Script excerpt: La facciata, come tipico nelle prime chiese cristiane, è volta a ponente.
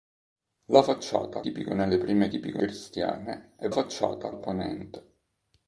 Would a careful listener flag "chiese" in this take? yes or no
yes